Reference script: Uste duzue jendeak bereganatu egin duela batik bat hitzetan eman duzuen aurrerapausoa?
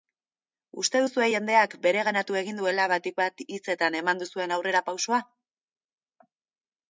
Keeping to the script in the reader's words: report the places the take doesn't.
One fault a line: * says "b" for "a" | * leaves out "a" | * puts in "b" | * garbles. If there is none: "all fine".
all fine